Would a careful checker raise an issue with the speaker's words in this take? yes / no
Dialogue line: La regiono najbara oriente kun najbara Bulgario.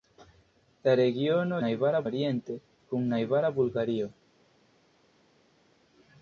no